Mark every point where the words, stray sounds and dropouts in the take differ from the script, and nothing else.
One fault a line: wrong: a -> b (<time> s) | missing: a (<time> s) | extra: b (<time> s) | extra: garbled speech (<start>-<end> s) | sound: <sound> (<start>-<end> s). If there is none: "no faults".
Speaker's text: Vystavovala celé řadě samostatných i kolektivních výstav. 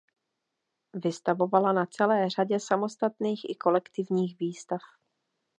extra: na (1.7 s)